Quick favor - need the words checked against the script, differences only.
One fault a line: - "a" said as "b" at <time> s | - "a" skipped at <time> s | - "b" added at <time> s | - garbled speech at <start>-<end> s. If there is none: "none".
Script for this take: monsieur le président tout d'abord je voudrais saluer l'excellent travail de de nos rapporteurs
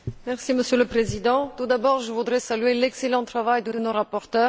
none